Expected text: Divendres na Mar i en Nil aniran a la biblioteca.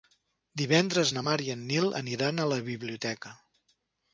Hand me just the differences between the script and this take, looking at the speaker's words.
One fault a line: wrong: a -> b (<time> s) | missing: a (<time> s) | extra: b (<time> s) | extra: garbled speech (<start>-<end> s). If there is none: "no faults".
no faults